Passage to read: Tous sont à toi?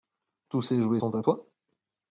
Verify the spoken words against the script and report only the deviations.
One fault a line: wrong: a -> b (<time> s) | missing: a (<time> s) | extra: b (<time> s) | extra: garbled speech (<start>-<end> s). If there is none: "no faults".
extra: ces jouets (0.6 s)